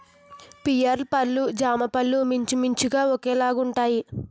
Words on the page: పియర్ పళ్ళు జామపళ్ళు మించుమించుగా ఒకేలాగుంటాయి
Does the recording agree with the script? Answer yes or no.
yes